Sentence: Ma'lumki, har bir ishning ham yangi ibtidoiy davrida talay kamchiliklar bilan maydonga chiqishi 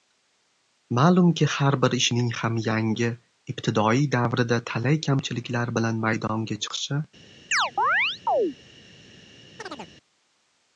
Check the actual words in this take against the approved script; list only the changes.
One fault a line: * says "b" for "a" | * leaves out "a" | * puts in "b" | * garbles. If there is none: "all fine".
all fine